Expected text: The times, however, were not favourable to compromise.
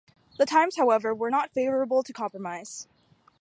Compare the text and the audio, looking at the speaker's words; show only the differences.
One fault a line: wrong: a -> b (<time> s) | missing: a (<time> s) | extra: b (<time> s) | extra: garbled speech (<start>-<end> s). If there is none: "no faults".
no faults